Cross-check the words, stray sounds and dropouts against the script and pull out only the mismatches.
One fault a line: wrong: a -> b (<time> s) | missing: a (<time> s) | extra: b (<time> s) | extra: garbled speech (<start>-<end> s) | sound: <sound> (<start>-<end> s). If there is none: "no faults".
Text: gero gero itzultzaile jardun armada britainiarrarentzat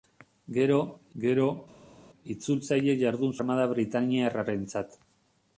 no faults